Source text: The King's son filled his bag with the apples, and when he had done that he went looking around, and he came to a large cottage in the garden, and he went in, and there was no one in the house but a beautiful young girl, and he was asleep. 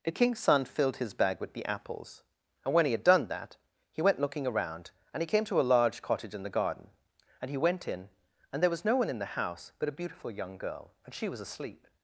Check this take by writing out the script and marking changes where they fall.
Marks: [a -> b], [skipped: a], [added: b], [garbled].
The King's son filled his bag with the apples, and when he had done that he went looking around, and he came to a large cottage in the garden, and he went in, and there was no one in the house but a beautiful young girl, and [he -> she] was asleep.